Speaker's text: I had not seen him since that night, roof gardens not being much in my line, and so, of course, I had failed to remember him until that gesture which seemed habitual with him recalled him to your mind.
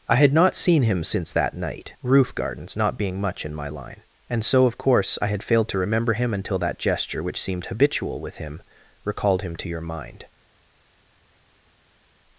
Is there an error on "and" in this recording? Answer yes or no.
no